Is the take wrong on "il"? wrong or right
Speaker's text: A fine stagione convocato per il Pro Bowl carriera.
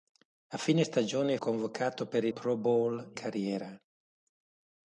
right